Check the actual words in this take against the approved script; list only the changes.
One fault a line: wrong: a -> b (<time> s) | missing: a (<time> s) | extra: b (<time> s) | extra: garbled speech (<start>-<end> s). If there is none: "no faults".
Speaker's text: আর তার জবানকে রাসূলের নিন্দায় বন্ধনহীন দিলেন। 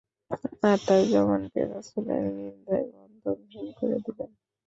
extra: করে (3.8 s)